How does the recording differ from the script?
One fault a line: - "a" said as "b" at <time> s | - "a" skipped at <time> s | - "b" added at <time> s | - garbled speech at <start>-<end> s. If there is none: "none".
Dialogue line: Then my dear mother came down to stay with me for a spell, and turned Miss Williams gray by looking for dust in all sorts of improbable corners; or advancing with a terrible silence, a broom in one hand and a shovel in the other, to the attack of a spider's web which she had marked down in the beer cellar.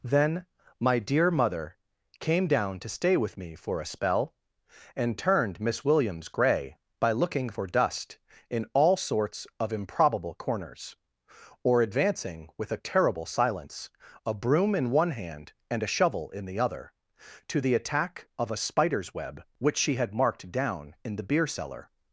none